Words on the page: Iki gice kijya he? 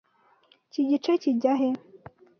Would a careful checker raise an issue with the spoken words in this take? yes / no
no